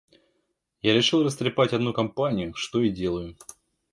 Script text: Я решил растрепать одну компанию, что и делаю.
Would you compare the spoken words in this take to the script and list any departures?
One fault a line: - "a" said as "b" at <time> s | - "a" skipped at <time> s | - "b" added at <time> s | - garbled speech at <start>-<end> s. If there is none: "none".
none